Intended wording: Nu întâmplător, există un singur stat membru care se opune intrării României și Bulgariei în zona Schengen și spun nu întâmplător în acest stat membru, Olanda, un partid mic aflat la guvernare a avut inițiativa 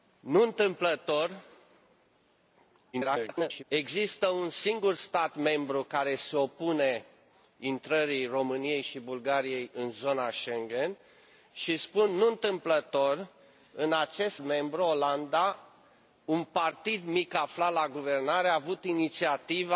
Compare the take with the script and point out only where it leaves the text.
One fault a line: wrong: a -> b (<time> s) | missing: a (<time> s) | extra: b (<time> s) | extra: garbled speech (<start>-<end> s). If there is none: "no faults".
extra: garbled speech (2.9-3.6 s)
missing: stat (14.4 s)